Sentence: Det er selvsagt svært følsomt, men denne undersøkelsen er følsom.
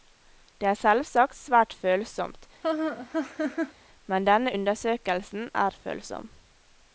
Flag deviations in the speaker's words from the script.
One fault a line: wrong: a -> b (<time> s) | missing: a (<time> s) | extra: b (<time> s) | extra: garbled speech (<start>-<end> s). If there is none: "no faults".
no faults